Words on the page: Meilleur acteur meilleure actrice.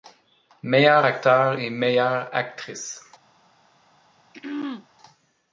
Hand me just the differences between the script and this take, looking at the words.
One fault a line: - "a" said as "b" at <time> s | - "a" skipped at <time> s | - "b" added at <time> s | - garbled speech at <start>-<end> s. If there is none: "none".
- "et" added at 1.6 s